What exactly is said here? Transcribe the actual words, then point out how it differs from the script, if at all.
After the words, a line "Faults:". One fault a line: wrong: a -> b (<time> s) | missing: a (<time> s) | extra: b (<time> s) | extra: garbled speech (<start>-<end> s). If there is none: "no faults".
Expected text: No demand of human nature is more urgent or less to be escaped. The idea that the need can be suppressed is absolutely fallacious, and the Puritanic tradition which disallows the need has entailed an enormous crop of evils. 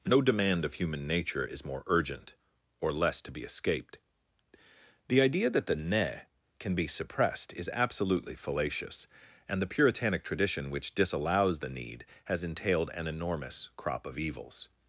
No demand of human nature is more urgent or less to be escaped. The idea that the ne can be suppressed is absolutely fallacious, and the Puritanic tradition which disallows the need has entailed an enormous crop of evils.
Faults:
wrong: need -> ne (5.8 s)